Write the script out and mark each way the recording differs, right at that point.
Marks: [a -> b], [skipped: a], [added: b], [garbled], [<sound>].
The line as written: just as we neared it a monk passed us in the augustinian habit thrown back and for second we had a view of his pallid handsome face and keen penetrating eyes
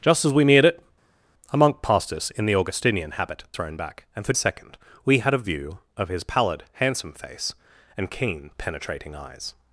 just as we neared it a monk passed us in the augustinian habit thrown back and for second we had a view of his pallid handsome face and keen penetrating eyes